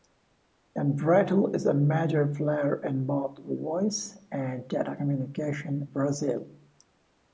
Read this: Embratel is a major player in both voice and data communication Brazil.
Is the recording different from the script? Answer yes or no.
no